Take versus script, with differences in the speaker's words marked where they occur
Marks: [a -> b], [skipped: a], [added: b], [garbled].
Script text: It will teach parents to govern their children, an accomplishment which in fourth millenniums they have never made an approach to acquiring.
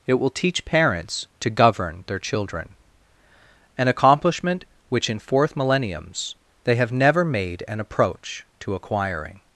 It will teach parents to govern their children, an accomplishment which in fourth millenniums they have never made an approach to acquiring.